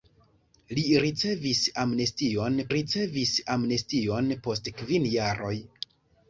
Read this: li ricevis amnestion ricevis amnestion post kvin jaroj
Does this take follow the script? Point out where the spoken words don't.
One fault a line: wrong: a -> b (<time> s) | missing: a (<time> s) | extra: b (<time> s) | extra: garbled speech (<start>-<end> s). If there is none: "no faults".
no faults